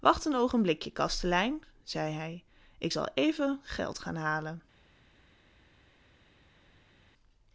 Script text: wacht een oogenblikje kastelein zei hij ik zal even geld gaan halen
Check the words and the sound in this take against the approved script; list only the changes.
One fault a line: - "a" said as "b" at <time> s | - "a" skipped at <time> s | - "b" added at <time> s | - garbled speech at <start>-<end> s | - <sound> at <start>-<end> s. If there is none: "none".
none